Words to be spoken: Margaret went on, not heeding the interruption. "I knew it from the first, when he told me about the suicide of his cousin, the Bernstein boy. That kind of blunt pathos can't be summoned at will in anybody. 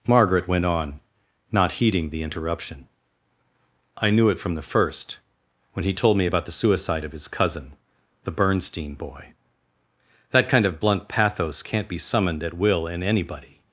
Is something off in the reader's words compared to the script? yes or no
no